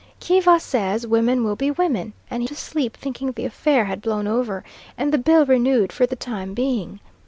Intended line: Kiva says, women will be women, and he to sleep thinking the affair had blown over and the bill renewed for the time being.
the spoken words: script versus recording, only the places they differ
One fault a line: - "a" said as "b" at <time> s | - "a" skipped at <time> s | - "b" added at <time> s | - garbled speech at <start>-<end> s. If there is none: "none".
none